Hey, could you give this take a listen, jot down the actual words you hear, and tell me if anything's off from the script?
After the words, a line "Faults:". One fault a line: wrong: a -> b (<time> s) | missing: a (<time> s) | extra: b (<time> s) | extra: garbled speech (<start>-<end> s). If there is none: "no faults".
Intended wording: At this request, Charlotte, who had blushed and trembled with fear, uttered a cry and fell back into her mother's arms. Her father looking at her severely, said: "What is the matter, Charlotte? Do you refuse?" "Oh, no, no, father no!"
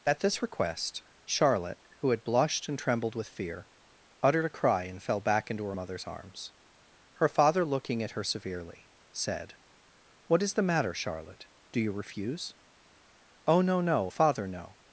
At this request, Charlotte, who had blushed and trembled with fear, uttered a cry and fell back into her mother's arms. Her father looking at her severely, said: "What is the matter, Charlotte? Do you refuse?" "Oh, no, no, father no!"
Faults:
no faults